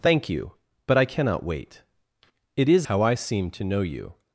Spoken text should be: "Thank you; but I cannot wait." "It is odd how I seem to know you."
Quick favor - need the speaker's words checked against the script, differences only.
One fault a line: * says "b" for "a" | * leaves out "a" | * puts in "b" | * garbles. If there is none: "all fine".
* leaves out "odd"